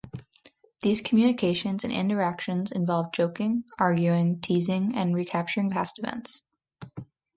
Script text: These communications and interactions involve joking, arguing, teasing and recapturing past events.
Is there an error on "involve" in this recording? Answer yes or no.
no